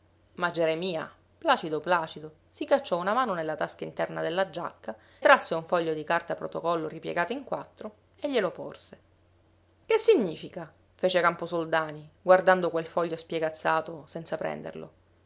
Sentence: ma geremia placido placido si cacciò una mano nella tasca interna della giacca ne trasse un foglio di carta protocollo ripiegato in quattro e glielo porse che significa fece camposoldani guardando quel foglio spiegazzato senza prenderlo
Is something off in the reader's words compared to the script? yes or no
yes